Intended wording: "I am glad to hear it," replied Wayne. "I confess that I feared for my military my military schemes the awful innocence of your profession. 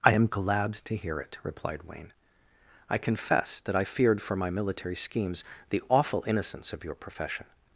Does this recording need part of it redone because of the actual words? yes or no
yes